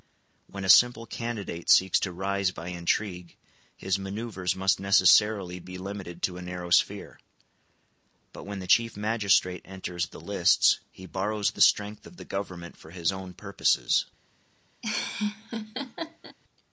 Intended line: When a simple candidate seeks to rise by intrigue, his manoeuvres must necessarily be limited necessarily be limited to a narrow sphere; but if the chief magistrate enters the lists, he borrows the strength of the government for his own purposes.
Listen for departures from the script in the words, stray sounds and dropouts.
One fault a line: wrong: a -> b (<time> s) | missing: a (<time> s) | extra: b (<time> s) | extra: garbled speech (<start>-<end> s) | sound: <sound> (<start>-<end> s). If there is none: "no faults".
missing: necessarily be limited (6.2 s)
wrong: if -> when (8.4 s)
sound: laugh (14.8-16.4 s)